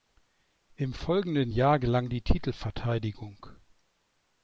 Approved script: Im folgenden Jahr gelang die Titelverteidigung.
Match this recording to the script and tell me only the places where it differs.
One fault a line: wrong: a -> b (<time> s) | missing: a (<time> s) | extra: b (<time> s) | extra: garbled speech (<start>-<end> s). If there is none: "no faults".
no faults